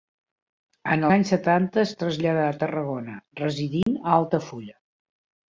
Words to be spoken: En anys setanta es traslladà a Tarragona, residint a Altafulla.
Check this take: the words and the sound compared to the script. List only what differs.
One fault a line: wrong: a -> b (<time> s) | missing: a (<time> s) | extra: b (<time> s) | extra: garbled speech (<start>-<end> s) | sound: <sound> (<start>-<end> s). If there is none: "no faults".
sound: dropout (3.8-3.9 s)